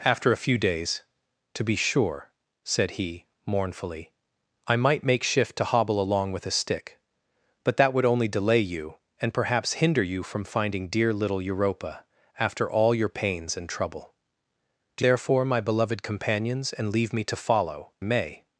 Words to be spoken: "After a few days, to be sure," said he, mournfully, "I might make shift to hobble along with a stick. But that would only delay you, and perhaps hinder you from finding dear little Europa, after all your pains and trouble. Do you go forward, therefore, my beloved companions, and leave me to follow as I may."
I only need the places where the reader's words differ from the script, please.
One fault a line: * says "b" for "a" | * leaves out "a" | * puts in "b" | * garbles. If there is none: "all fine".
* leaves out "you go forward"
* leaves out "as I"